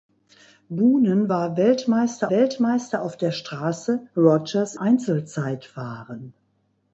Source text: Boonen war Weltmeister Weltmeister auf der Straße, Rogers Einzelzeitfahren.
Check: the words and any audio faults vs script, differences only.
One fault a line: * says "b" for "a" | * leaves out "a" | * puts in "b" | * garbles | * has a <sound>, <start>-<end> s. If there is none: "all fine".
all fine